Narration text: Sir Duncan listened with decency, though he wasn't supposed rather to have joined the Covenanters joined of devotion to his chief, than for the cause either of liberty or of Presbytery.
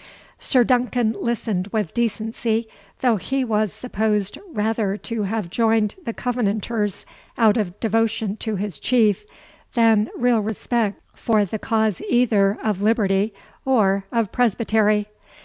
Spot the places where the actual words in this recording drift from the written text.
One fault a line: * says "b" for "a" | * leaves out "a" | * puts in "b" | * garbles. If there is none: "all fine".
* says "was" for "wasn't"
* says "out" for "joined"
* puts in "real respect"